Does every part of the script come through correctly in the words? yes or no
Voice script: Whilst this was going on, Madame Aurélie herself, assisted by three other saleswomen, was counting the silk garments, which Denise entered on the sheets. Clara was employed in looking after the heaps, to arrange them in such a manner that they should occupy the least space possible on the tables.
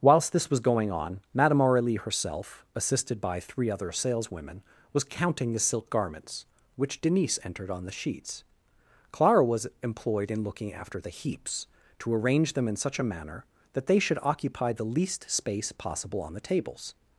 yes